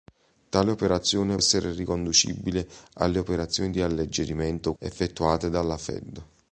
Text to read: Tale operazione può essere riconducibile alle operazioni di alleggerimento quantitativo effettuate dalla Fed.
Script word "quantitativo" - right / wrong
wrong